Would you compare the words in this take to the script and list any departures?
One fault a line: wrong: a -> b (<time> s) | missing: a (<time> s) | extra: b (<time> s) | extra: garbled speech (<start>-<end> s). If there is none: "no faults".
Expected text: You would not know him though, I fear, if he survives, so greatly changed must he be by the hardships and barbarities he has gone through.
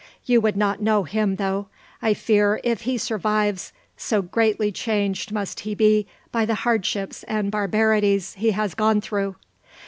no faults